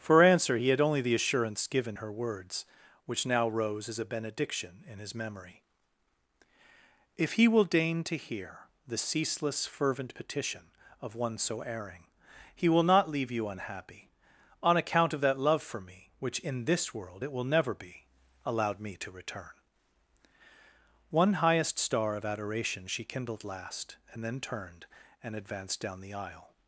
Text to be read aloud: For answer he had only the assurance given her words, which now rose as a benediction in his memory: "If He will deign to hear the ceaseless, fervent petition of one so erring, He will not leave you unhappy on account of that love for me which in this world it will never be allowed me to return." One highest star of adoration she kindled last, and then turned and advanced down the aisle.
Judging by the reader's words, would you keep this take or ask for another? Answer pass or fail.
pass